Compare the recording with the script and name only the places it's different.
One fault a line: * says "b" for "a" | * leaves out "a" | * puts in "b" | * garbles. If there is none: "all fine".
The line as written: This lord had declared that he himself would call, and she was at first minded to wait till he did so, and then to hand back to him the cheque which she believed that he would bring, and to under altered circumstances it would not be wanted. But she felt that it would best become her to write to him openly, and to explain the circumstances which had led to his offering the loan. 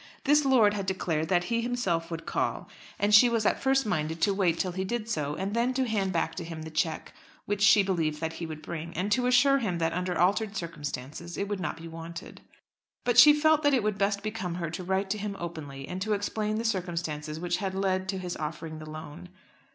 * puts in "assure him that"